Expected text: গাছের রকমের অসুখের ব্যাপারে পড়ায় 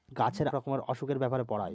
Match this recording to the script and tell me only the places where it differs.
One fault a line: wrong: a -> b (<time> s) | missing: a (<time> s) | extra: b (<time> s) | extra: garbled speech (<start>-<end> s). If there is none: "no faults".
no faults